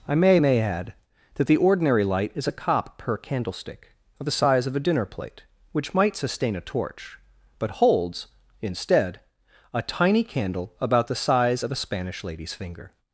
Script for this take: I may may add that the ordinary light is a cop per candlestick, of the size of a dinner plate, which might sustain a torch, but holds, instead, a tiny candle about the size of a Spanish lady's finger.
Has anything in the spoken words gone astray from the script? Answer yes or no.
no